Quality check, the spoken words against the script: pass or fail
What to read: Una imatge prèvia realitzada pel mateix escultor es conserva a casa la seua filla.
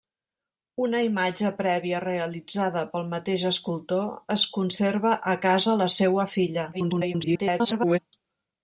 fail